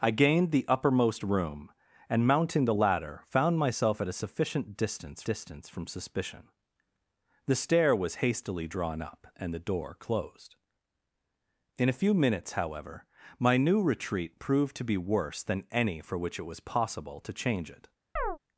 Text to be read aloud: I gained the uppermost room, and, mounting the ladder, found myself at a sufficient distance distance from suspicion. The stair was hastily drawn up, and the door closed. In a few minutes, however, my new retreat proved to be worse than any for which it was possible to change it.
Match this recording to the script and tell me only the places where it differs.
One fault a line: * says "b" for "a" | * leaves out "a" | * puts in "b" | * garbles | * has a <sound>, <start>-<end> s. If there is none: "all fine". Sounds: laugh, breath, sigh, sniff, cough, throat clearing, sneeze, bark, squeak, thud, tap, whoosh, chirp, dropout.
* has a chirp, 18.2-18.4 s